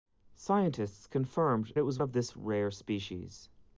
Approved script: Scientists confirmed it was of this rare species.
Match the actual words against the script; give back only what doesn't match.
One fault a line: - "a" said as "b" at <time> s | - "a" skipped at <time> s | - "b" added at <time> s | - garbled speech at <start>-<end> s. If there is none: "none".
none